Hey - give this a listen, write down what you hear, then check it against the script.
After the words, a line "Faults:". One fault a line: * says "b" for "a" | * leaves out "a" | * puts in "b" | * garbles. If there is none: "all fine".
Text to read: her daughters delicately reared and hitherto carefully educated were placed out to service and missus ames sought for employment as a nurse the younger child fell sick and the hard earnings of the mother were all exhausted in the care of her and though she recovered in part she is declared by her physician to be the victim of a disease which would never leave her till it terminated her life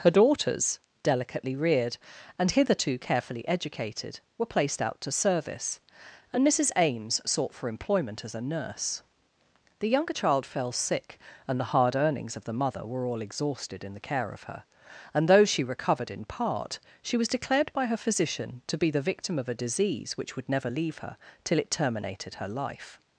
her daughters delicately reared and hitherto carefully educated were placed out to service and missus ames sought for employment as a nurse the younger child fell sick and the hard earnings of the mother were all exhausted in the care of her and though she recovered in part she was declared by her physician to be the victim of a disease which would never leave her till it terminated her life
Faults:
* says "was" for "is"